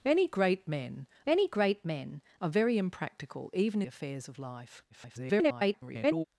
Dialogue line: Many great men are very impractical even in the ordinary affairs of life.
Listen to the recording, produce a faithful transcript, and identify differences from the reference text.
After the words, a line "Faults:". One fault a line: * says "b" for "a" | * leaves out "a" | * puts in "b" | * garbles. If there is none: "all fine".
Many great men many great men are very impractical even affairs of life. [garbled]
Faults:
* puts in "many great men"
* leaves out "in the ordinary"
* garbles